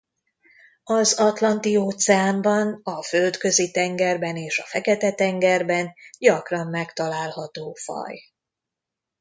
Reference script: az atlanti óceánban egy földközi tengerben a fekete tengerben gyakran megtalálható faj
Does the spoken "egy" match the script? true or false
false